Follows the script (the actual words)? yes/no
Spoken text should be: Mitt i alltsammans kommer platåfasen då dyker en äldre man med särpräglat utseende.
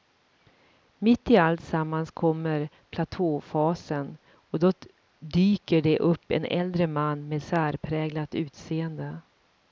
no